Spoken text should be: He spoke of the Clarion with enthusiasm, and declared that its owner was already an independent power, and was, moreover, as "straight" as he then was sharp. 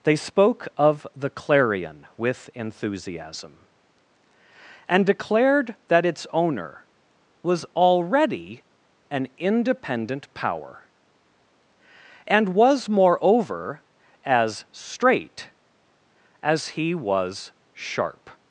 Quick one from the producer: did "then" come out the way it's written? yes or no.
no